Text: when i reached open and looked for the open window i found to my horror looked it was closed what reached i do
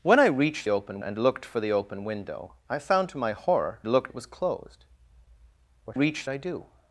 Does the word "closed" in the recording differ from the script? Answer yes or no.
no